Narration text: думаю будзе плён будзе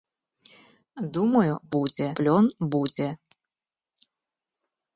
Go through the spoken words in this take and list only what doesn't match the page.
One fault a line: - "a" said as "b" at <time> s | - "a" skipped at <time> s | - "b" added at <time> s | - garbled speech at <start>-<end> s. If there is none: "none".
none